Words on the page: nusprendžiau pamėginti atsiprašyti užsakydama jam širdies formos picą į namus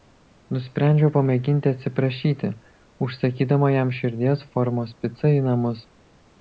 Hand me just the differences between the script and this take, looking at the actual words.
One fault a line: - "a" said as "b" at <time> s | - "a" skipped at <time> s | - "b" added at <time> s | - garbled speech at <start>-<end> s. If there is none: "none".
none